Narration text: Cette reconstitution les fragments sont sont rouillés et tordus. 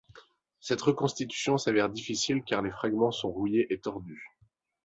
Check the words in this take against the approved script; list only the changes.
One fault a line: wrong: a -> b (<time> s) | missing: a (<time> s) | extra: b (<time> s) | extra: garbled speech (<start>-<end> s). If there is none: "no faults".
extra: s'avère difficile car (1.6 s)
missing: sont (3.3 s)